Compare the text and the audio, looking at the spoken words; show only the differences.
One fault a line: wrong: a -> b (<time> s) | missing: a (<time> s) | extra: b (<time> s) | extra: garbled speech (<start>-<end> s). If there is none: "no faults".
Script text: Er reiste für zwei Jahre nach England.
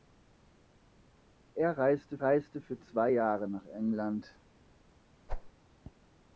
extra: reiste (2.2 s)